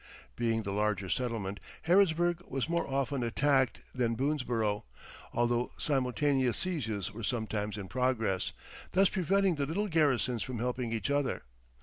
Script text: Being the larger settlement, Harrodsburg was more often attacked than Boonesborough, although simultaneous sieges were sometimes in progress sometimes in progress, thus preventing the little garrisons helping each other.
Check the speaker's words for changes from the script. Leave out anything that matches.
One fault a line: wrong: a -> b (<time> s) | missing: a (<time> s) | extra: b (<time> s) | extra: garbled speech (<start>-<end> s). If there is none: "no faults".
missing: sometimes in progress (8.5 s)
extra: from (10.4 s)